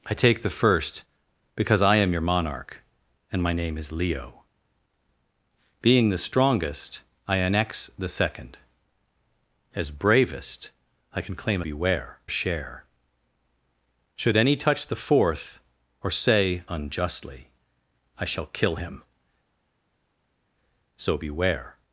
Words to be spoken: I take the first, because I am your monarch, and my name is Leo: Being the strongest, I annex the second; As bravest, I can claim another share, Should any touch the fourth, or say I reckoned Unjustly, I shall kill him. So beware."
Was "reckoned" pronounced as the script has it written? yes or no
no